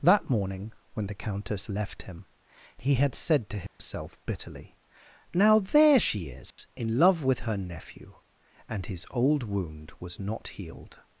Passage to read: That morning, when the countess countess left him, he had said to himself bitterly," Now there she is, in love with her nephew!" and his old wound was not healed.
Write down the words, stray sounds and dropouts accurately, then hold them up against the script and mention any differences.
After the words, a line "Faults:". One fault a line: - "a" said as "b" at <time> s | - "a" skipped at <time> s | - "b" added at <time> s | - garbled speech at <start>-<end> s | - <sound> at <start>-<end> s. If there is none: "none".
That morning, when the countess left him, he had said to himself bitterly," Now there she is, in love with her nephew!" and his old wound was not healed.
Faults:
- "countess" skipped at 1.7 s
- dropout at 3.7-3.8 s
- dropout at 6.5-6.6 s